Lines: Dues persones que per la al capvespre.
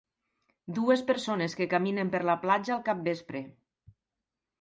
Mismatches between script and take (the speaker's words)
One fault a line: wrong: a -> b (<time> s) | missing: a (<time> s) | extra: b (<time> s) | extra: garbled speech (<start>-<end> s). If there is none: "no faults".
extra: caminen (1.7 s)
extra: platja (2.5 s)